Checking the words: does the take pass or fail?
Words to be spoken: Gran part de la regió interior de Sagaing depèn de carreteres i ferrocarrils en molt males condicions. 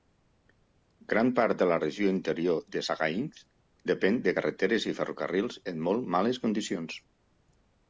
pass